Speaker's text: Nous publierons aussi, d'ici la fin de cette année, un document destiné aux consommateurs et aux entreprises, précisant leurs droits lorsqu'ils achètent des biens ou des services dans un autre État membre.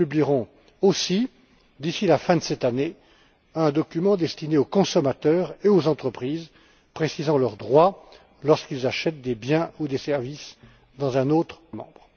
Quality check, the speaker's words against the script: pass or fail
fail